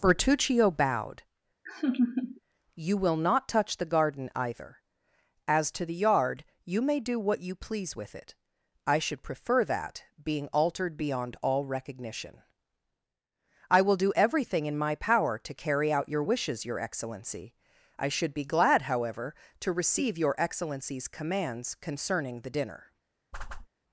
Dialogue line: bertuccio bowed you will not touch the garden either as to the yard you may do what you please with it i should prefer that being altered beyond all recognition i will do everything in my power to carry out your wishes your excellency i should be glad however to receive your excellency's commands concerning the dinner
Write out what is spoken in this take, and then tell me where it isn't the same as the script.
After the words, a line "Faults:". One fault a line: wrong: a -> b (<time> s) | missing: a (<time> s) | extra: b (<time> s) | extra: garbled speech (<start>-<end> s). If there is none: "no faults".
bertuccio bowed you will not touch the garden either as to the yard you may do what you please with it i should prefer that being altered beyond all recognition i will do everything in my power to carry out your wishes your excellency i should be glad however to receive your excellency's commands concerning the dinner
Faults:
no faults